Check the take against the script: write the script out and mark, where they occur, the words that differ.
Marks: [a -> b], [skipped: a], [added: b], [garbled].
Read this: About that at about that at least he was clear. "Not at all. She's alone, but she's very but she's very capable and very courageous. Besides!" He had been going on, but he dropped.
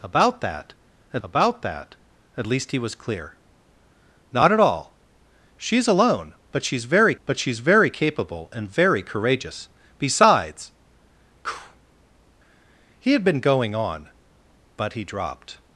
About that at about that at least he was clear. "Not at all. She's alone, but she's very but she's very capable and very courageous. Besides!" He had been going on, but he dropped.